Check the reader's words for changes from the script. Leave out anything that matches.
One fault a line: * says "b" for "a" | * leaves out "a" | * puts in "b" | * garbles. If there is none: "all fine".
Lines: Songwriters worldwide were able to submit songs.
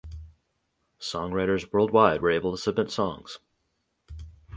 all fine